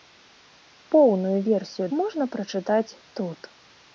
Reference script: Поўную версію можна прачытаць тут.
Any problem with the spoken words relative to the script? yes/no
no